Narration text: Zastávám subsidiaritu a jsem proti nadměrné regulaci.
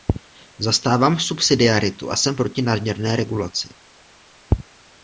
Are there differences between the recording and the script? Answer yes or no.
no